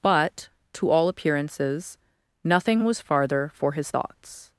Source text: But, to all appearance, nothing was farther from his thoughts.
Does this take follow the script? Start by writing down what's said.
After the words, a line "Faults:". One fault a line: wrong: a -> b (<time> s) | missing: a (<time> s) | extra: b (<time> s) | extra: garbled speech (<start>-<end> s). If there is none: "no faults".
But, to all appearances, nothing was farther for his thoughts.
Faults:
wrong: appearance -> appearances (1.1 s)
wrong: from -> for (3.5 s)